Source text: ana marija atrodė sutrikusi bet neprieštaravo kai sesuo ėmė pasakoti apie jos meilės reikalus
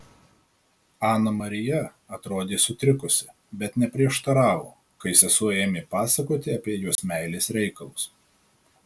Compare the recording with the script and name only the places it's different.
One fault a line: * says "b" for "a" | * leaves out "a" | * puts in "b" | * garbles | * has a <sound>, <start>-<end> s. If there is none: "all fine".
* has a dropout, 7.0-7.0 s